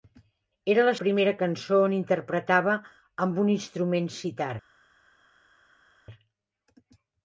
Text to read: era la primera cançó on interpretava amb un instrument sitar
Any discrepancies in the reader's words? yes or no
no